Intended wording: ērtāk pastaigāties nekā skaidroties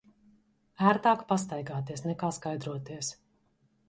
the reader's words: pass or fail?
pass